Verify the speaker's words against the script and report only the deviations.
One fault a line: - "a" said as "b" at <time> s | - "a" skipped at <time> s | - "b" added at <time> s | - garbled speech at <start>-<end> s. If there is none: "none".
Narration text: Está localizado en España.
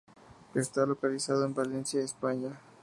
- "Valencia" added at 1.5 s